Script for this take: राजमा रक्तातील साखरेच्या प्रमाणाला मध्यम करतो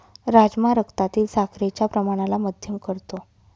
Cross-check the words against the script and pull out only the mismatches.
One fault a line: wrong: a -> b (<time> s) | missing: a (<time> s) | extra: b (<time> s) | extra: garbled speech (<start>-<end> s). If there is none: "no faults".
no faults